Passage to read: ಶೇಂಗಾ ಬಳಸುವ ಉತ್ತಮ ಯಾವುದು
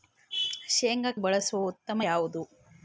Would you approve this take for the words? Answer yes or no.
yes